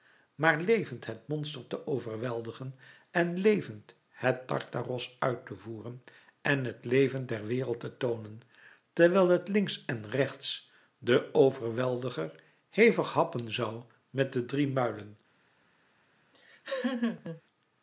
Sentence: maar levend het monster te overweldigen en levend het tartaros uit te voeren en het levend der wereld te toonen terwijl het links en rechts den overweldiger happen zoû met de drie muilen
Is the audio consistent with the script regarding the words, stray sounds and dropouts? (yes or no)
no